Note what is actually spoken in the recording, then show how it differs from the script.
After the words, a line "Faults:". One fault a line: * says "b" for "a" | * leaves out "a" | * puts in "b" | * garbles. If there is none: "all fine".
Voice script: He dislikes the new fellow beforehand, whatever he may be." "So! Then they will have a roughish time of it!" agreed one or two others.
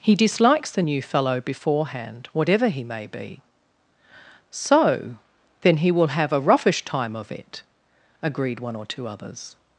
He dislikes the new fellow beforehand, whatever he may be." "So! Then he will have a roughish time of it!" agreed one or two others.
Faults:
* says "he" for "they"